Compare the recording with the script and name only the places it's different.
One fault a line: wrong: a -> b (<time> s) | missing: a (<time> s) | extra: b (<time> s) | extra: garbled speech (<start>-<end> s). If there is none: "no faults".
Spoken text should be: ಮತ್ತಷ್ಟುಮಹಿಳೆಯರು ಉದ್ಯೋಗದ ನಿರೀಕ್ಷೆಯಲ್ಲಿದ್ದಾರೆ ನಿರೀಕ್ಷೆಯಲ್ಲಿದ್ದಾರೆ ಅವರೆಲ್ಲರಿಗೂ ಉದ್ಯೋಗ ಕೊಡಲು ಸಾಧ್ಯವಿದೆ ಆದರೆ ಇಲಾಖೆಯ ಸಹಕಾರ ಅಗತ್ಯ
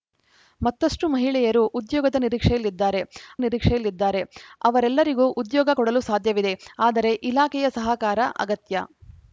no faults